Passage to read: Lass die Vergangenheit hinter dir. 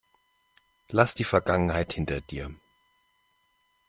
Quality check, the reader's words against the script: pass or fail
pass